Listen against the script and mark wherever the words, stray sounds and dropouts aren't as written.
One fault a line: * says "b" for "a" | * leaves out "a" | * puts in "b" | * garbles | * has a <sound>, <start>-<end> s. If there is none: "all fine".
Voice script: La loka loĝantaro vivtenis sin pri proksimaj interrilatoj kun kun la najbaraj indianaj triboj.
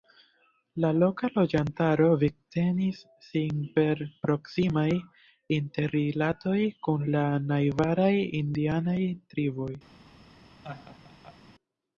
* says "per" for "pri"
* leaves out "kun"
* has a laugh, 10.6-11.4 s